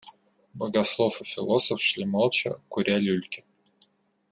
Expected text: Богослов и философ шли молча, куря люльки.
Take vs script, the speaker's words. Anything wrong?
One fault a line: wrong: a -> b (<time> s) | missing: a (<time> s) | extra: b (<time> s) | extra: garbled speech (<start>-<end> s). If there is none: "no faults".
no faults